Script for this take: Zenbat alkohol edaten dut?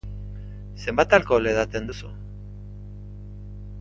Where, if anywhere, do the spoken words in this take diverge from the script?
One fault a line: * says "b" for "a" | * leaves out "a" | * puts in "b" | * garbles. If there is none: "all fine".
* says "duzu" for "dut"